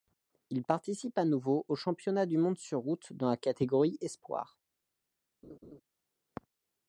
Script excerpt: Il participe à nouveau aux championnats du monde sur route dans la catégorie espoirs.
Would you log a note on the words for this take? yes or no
no